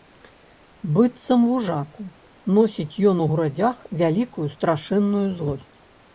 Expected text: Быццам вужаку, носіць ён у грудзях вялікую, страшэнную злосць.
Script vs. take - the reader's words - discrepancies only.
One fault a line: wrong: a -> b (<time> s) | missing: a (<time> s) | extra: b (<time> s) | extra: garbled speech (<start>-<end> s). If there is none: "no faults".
no faults